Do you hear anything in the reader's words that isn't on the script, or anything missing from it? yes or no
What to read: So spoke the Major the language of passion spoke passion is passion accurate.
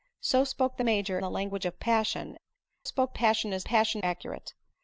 no